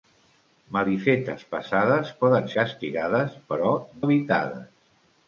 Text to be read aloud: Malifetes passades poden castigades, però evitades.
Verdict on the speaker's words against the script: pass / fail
pass